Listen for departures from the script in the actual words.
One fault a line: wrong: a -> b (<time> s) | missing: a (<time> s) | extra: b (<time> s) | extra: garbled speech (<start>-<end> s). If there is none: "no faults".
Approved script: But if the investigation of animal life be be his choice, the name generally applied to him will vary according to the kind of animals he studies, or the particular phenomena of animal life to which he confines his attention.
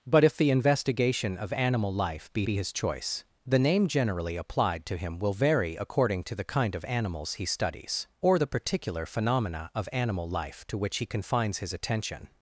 no faults